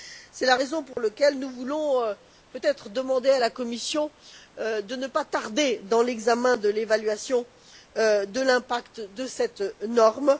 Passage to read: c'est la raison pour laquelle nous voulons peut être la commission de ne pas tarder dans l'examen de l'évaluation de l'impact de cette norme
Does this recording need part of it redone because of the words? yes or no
yes